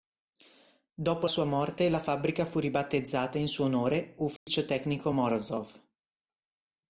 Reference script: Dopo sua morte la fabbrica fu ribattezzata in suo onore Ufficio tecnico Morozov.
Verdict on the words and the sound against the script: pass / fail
fail